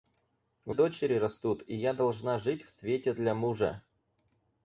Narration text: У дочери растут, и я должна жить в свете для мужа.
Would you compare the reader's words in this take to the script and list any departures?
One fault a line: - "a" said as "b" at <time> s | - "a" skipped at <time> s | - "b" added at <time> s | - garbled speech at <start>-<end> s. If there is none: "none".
none